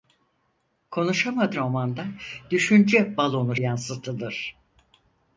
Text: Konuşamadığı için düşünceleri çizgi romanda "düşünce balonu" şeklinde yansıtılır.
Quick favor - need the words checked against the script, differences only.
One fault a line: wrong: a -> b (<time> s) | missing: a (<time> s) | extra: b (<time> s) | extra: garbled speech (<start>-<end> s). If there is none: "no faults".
missing: için düşünceleri çizgi (1.6 s)
missing: şeklinde (3.6 s)